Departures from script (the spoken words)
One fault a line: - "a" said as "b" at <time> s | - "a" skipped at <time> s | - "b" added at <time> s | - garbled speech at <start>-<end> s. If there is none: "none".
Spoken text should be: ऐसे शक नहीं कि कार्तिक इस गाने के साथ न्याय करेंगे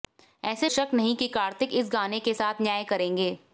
none